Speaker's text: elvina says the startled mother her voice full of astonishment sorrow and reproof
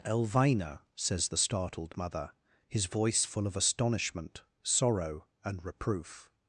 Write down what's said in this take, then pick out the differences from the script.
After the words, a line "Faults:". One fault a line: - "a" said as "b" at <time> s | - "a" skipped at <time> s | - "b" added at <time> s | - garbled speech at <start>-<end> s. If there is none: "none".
elvina says the startled mother his voice full of astonishment sorrow and reproof
Faults:
- "her" said as "his" at 2.7 s